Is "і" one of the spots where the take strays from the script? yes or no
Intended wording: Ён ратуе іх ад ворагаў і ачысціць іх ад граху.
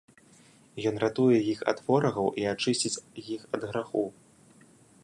no